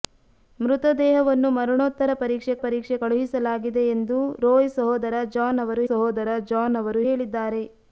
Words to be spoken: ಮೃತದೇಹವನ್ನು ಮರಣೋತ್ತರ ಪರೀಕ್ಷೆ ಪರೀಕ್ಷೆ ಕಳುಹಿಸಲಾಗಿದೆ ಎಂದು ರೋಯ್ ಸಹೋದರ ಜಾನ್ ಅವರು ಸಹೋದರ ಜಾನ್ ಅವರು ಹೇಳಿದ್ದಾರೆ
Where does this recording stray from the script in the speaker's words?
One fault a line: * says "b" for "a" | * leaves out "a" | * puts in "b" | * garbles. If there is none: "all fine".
all fine